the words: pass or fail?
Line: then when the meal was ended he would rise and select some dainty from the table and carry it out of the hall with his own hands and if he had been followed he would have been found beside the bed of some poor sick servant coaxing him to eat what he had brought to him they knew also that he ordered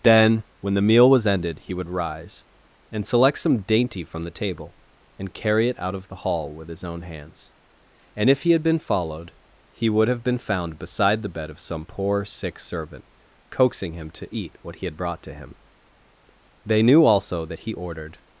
pass